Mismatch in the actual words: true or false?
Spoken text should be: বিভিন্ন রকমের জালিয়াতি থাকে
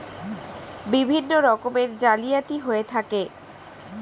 true